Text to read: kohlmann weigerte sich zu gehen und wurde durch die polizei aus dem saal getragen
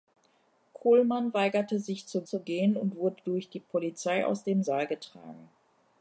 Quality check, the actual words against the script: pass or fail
fail